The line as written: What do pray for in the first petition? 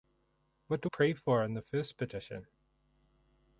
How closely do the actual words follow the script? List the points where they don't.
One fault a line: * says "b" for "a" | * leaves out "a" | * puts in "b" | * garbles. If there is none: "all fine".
all fine